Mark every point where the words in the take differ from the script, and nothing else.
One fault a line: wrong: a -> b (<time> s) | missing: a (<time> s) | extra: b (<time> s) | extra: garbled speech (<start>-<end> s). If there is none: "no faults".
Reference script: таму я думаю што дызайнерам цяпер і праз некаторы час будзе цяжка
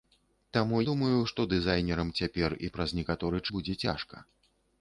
missing: я (0.8 s)
missing: час (3.4 s)